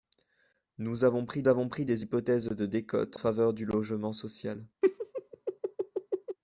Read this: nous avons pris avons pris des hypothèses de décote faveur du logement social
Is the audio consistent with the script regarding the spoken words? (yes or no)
yes